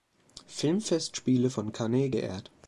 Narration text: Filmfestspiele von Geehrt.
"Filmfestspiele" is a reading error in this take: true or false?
false